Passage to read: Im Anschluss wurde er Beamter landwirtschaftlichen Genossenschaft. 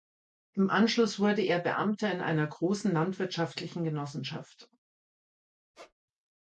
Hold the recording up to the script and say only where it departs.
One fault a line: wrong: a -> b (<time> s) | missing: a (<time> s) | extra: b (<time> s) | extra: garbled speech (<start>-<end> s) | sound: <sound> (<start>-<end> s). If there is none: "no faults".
extra: in einer großen (2.1 s)
sound: squeak (5.7-5.9 s)